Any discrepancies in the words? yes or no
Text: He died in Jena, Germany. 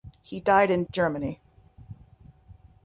yes